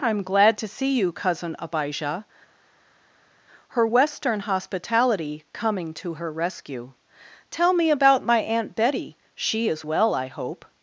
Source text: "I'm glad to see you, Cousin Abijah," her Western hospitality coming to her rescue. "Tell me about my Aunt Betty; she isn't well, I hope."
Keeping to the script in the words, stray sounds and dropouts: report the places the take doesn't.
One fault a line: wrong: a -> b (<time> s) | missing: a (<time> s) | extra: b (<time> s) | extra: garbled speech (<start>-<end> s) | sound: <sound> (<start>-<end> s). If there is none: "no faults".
wrong: isn't -> is (9.7 s)